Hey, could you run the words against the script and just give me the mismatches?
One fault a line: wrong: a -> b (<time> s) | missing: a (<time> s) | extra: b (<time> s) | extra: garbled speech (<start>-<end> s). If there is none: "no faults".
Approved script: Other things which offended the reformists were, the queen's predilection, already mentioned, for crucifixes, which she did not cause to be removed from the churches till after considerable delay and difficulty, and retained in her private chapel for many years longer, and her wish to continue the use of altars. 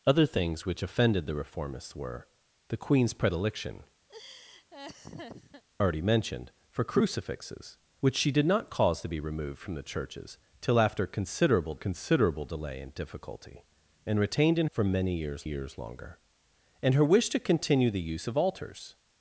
extra: considerable (11.7 s)
missing: her private chapel (14.7 s)
extra: years (15.4 s)